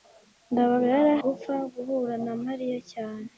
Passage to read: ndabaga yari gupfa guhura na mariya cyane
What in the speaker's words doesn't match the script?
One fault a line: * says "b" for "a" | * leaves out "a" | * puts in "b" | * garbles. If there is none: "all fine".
all fine